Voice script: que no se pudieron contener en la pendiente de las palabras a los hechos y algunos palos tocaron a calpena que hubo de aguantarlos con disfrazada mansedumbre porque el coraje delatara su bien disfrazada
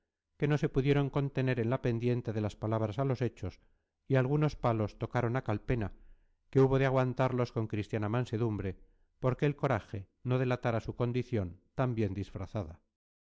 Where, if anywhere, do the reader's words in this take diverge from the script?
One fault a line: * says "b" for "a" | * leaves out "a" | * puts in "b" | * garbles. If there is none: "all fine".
* says "cristiana" for "disfrazada"
* puts in "no"
* puts in "condición tan"